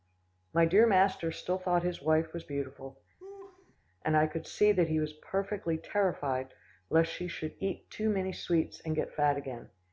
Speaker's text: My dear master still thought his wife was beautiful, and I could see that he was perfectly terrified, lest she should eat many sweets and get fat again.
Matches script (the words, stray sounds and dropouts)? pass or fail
fail